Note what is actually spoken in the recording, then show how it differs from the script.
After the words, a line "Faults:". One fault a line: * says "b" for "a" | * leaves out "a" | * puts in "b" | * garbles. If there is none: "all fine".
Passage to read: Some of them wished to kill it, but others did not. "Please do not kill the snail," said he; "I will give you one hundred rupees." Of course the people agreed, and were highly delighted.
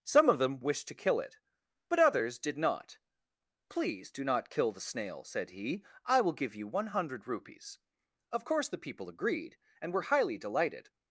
Some of them wished to kill it, but others did not. "Please do not kill the snail," said he; "I will give you one hundred rupees." Of course the people agreed, and were highly delighted.
Faults:
all fine